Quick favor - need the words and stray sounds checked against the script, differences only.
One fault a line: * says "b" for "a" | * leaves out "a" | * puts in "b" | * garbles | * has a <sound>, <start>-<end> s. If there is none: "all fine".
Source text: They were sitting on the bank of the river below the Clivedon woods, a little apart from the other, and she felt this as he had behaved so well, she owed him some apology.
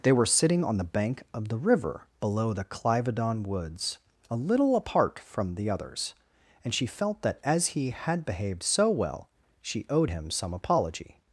* says "others" for "other"
* says "that" for "this"